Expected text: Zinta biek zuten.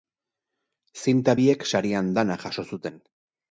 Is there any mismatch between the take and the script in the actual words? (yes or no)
yes